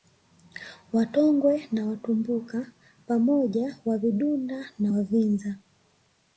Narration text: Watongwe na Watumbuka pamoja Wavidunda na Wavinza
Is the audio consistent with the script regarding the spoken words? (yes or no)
yes